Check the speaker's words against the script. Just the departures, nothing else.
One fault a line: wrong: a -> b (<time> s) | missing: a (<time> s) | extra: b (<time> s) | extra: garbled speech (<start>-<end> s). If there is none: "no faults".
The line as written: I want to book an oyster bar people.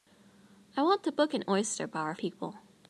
no faults